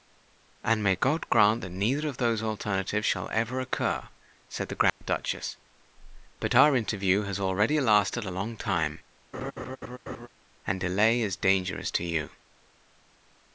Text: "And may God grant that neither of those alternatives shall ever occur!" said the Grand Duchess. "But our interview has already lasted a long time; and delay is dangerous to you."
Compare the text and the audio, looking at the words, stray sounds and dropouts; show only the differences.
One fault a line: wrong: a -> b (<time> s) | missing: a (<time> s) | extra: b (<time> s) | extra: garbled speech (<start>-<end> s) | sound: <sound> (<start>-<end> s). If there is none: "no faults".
sound: dropout (4.9-5.0 s)
sound: laugh (9.3-10.3 s)